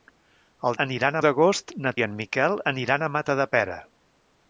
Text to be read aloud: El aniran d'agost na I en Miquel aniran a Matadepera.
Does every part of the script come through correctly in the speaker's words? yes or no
yes